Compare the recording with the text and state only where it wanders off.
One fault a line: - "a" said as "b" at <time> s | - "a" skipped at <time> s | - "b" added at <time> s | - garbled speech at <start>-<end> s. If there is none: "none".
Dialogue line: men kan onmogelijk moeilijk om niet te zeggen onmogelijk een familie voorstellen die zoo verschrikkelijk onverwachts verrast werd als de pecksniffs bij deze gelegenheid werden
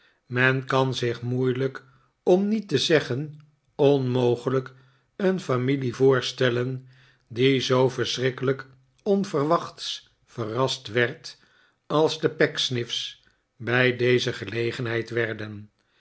- "onmogelijk" said as "zich" at 0.9 s